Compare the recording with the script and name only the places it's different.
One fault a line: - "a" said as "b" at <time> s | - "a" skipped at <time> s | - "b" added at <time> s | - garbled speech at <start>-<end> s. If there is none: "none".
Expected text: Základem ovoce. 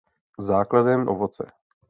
none